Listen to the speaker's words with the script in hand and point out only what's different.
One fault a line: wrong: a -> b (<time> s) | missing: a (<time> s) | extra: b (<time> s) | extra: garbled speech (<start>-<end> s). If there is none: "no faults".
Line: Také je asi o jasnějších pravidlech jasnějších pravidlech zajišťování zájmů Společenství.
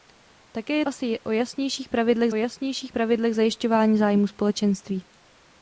no faults